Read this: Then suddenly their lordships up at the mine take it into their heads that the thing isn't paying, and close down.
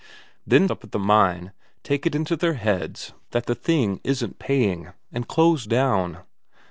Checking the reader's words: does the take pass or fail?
fail